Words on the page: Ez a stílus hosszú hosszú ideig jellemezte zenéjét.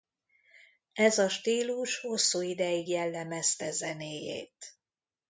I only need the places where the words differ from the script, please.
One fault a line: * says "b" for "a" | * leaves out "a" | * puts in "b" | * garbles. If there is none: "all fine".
* leaves out "hosszú"